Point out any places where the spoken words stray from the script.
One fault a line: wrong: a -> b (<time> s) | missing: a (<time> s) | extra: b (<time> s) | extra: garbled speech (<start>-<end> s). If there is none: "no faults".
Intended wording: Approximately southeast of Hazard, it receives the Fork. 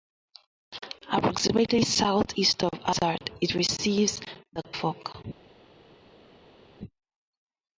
no faults